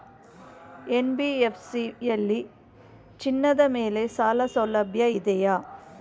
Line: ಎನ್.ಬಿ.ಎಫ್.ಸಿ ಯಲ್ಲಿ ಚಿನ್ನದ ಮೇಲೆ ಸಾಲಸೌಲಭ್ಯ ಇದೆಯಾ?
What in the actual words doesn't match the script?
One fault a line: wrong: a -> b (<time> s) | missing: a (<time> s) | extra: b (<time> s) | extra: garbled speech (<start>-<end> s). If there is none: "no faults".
no faults